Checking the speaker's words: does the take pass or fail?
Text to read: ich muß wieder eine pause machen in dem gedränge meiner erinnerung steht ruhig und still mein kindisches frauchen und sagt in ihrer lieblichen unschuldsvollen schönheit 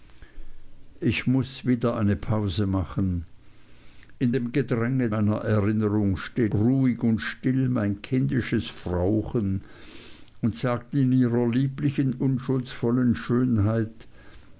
pass